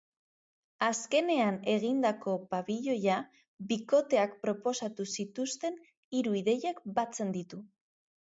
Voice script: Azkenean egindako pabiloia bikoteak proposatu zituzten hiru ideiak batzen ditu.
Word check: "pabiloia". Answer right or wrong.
right